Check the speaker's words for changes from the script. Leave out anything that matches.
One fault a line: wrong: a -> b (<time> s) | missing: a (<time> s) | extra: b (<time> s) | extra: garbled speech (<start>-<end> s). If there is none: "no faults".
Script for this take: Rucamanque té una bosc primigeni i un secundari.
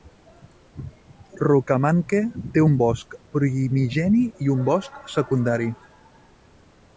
wrong: una -> un (2.7 s)
extra: bosc (4.7 s)